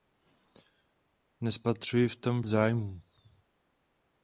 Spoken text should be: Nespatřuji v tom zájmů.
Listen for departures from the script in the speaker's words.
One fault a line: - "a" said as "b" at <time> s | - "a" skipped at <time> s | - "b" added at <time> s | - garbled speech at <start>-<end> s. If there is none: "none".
none